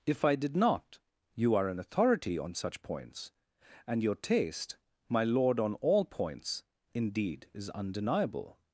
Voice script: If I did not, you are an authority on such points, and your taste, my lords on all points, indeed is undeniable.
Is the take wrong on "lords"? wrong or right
wrong